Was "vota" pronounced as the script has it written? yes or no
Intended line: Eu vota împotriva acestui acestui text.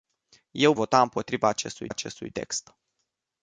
yes